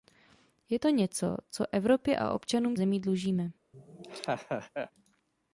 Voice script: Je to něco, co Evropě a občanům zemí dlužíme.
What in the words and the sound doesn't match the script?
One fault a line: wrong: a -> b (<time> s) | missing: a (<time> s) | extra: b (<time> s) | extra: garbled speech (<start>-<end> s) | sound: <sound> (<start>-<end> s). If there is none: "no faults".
sound: laugh (3.7-4.9 s)